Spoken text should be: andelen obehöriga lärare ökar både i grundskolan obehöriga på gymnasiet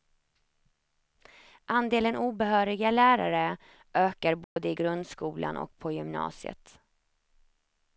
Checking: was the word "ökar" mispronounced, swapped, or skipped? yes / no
no